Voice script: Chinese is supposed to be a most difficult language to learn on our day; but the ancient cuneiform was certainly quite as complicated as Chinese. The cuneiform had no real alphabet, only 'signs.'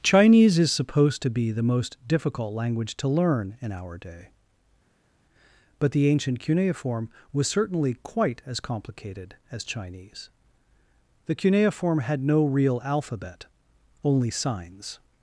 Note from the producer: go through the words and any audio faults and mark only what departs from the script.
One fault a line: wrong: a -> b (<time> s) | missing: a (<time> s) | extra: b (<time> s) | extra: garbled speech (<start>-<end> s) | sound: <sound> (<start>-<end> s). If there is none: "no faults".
wrong: a -> the (1.5 s)
wrong: on -> in (3.6 s)